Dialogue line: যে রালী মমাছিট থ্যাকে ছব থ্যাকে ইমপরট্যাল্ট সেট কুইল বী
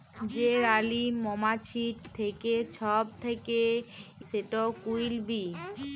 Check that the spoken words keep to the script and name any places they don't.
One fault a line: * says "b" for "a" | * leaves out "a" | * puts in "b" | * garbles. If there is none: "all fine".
* leaves out "ইমপরট্যাল্ট"